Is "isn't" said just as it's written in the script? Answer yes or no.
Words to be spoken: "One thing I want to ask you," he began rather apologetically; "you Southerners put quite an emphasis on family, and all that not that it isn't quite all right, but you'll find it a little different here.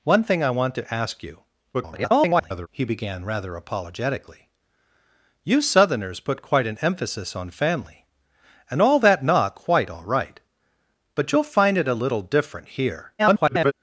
no